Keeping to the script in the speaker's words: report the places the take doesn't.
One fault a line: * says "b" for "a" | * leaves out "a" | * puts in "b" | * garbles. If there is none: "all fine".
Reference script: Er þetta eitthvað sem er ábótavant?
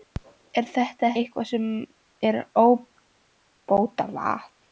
all fine